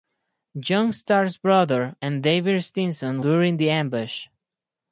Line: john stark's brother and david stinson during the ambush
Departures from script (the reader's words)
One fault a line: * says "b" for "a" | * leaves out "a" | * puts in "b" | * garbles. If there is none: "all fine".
all fine